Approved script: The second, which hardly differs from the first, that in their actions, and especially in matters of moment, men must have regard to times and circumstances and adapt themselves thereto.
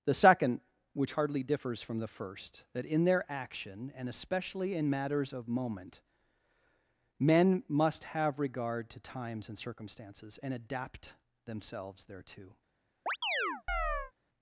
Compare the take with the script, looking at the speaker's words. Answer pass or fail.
fail